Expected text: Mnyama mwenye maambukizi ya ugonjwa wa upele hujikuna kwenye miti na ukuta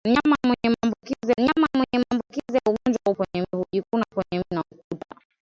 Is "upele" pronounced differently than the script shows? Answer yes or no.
yes